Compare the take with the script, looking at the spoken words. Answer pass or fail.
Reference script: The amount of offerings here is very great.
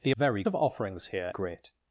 fail